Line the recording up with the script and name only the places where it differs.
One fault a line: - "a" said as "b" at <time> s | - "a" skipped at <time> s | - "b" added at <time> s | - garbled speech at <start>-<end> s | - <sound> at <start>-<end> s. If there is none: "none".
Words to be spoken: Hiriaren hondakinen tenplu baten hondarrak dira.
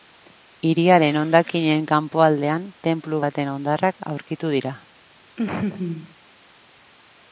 - "kanpoaldean" added at 1.9 s
- "aurkitu" added at 4.1 s
- laugh at 5.4-6.1 s